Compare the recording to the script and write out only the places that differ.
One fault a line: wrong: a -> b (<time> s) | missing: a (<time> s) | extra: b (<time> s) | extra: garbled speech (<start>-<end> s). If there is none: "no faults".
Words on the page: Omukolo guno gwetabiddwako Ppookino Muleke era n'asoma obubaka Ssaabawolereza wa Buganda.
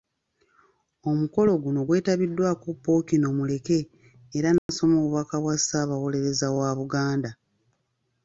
extra: bwa (5.4 s)